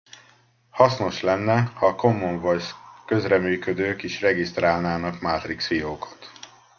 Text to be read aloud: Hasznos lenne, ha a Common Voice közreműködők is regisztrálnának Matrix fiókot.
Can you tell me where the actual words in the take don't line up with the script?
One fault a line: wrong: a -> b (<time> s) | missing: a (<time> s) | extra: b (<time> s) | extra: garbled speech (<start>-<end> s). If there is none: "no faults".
no faults